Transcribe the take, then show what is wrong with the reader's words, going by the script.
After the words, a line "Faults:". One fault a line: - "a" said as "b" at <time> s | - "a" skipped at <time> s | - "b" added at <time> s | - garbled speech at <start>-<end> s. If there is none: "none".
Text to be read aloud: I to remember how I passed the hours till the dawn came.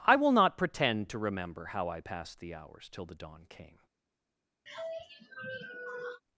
I will not pretend to remember how I passed the hours till the dawn came.
Faults:
- "will not pretend" added at 0.1 s